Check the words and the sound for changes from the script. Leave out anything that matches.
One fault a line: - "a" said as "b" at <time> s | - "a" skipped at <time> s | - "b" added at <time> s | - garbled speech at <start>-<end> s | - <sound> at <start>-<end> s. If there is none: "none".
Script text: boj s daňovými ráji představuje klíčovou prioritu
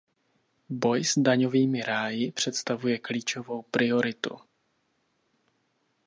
none